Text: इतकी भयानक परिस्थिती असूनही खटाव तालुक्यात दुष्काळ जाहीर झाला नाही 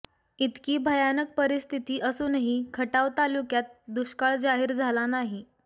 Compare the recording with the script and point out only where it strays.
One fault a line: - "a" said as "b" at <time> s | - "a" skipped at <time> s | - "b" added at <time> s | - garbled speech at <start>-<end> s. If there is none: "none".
none